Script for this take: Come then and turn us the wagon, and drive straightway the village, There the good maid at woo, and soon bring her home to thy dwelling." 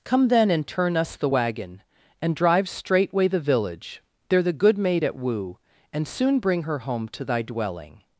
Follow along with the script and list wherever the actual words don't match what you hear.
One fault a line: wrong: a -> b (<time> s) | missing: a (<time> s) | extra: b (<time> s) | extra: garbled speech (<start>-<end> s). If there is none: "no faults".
no faults